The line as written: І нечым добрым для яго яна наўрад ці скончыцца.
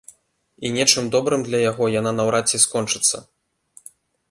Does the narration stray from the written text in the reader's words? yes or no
no